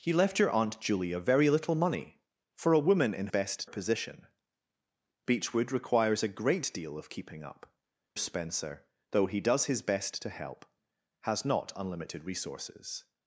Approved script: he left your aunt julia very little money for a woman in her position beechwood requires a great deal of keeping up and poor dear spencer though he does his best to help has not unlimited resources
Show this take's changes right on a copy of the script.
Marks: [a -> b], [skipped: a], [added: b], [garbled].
he left your aunt julia very little money for a woman in [her -> best] position beechwood requires a great deal of keeping up [skipped: and poor dear] spencer though he does his best to help has not unlimited resources